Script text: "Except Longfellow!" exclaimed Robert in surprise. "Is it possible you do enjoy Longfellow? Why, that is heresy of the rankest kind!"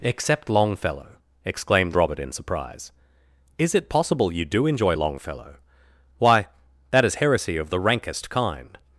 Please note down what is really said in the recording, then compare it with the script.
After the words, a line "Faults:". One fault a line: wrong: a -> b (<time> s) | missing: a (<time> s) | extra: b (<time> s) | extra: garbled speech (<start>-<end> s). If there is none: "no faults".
"Except Longfellow!" exclaimed Robert in surprise. "Is it possible you do enjoy Longfellow? Why, that is heresy of the rankest kind!"
Faults:
no faults